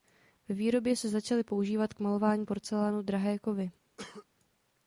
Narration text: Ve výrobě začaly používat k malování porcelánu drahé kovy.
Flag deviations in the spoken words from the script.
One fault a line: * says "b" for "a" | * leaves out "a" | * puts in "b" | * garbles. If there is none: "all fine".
* puts in "se"